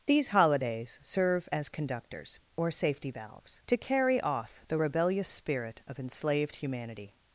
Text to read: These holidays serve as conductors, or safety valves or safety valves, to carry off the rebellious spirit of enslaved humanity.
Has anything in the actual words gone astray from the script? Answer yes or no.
yes